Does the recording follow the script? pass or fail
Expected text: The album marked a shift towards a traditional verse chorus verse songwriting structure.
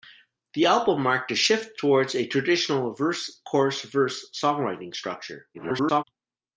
fail